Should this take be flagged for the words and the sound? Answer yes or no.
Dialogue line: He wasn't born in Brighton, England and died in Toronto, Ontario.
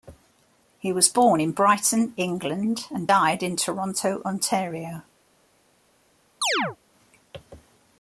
yes